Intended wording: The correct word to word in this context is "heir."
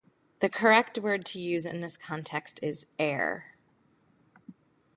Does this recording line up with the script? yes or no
no